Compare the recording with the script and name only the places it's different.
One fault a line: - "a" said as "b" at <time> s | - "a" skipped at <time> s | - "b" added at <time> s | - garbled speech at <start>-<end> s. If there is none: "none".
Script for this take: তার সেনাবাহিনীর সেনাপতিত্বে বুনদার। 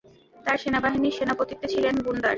- "ছিলেন" added at 1.7 s